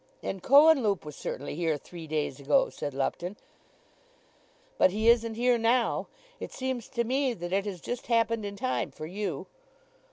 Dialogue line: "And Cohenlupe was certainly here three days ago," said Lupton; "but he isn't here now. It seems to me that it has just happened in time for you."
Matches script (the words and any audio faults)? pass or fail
pass